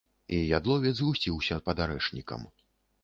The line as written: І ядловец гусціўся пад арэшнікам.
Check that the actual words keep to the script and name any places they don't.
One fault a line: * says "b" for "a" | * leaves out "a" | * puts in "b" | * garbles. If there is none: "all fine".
all fine